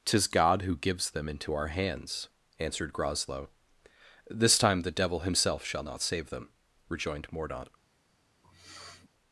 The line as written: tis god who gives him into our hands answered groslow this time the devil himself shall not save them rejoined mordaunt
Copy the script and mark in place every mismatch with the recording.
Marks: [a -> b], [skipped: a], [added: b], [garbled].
tis god who gives [him -> them] into our hands answered groslow this time the devil himself shall not save them rejoined mordaunt